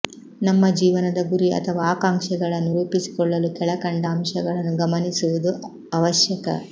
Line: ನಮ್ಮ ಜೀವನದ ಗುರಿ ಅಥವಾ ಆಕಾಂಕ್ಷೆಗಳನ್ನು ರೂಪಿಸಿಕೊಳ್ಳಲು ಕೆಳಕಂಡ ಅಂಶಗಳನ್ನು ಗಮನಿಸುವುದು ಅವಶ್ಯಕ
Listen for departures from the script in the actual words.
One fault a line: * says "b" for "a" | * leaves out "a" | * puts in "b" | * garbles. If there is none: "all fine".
all fine